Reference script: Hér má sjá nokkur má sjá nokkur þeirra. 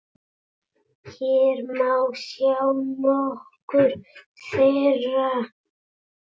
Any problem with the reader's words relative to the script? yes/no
yes